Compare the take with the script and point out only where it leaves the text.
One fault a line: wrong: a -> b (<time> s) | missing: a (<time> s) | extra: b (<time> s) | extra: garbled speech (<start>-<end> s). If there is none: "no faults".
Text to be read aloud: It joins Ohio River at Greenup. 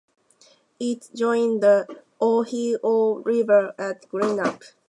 extra: the (1.6 s)